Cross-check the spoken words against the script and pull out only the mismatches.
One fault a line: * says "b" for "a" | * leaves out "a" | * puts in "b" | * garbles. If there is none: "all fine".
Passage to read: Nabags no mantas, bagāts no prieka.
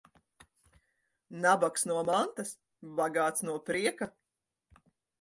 all fine